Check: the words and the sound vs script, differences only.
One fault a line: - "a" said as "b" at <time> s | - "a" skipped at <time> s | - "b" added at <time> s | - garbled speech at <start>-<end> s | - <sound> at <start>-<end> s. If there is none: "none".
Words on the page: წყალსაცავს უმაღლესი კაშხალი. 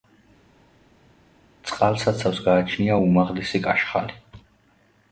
- "გააჩნია" added at 2.5 s